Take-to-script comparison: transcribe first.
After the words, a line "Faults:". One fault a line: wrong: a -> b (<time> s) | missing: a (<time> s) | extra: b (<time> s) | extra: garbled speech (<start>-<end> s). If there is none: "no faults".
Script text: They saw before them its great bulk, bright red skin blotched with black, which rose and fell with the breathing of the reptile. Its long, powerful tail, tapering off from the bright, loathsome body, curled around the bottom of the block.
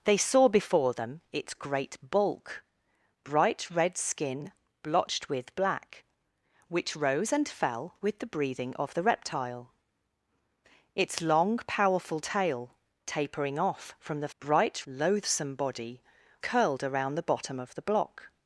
They saw before them its great bulk, bright red skin blotched with black, which rose and fell with the breathing of the reptile. Its long, powerful tail, tapering off from the bright, loathsome body, curled around the bottom of the block.
Faults:
no faults